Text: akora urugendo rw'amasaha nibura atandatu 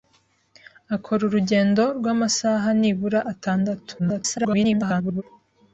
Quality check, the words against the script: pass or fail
fail